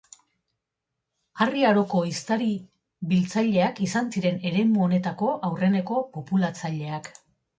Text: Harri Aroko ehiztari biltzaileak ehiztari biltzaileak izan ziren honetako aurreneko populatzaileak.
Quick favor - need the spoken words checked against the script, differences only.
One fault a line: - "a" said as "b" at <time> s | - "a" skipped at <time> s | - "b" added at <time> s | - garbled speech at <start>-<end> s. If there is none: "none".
- "ehiztari biltzaileak" skipped at 3.8 s
- "eremu" added at 4.5 s